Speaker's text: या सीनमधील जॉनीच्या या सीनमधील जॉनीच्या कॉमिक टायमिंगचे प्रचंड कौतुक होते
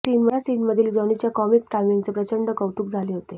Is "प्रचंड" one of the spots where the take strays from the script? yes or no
no